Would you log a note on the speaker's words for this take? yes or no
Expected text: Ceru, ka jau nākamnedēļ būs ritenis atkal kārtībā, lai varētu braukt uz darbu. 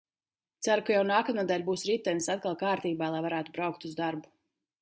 no